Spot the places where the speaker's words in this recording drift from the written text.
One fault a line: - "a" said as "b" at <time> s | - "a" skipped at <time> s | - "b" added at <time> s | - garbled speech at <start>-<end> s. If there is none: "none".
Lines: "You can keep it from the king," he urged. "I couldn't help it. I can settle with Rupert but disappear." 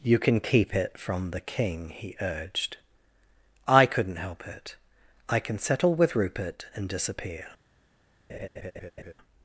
- "but" said as "and" at 6.8 s